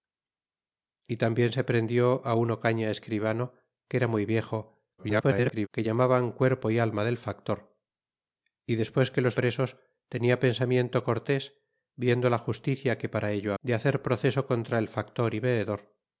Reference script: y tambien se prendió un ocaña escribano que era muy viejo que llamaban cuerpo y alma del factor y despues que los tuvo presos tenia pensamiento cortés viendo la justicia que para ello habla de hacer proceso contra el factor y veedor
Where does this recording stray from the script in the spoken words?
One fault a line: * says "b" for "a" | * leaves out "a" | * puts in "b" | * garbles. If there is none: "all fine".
* garbles
* leaves out "tuvo"
* leaves out "habla"